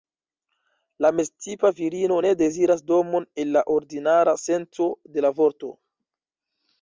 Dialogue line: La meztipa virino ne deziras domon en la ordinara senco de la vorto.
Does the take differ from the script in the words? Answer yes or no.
no